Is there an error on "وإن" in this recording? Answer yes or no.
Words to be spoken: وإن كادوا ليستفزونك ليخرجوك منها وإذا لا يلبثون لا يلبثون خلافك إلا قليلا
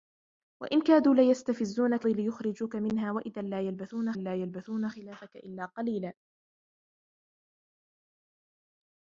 no